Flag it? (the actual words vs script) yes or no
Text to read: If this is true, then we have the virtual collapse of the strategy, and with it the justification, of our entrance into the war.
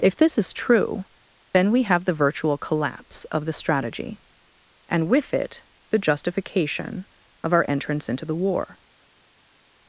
no